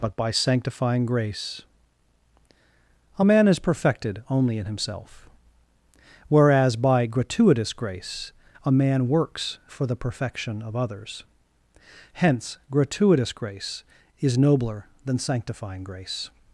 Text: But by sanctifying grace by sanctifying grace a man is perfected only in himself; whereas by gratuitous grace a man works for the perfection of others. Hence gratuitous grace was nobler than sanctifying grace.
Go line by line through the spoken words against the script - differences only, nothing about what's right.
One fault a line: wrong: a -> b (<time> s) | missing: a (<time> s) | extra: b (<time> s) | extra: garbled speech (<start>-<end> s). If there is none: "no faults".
missing: by sanctifying grace (1.6 s)
wrong: was -> is (14.2 s)